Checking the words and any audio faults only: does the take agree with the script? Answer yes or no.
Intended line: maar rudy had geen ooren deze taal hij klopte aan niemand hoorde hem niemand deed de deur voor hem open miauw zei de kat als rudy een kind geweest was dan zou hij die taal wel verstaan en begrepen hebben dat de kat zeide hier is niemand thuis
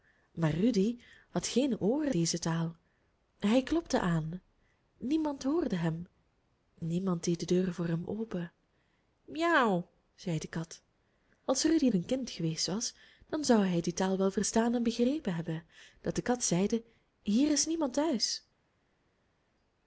yes